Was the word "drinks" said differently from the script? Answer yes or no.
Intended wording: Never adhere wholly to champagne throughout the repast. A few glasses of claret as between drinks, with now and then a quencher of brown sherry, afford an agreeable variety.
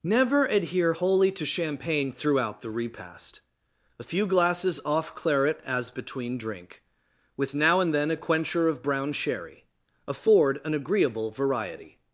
yes